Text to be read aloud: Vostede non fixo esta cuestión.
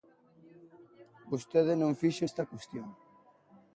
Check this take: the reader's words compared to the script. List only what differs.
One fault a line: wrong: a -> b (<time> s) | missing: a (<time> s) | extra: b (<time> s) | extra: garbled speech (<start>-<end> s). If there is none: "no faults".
no faults